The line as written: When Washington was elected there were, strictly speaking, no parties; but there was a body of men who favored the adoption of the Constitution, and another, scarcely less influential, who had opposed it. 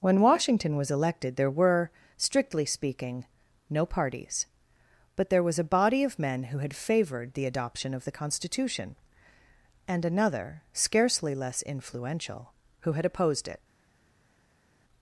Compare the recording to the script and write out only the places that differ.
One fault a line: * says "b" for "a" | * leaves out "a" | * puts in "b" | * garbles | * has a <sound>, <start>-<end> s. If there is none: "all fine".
* puts in "had"